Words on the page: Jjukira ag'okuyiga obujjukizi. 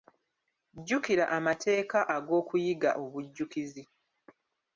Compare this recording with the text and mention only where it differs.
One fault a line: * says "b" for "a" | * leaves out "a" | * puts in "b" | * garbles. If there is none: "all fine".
* puts in "amateeka"